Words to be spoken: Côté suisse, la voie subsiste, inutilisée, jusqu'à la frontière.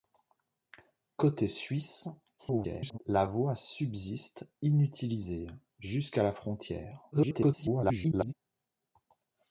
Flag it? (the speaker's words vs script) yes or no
yes